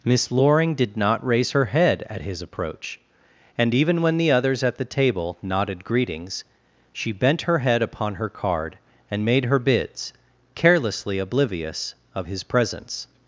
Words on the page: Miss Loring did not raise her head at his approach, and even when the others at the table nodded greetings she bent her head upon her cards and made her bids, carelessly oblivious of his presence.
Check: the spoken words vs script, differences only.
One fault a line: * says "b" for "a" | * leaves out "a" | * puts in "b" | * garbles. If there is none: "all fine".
* says "card" for "cards"